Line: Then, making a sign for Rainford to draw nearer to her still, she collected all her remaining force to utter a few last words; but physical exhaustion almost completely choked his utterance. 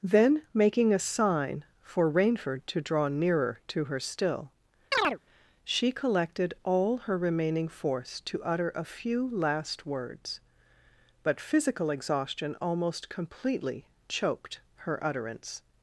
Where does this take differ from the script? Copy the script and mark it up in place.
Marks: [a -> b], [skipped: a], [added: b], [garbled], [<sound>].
Then, making a sign for Rainford to draw nearer to her still, [chirp] she collected all her remaining force to utter a few last words; but physical exhaustion almost completely choked [his -> her] utterance.